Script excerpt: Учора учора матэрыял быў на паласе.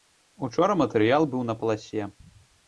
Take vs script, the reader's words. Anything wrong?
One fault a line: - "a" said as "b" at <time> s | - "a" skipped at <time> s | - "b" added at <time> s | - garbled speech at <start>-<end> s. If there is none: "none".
- "учора" skipped at 0.8 s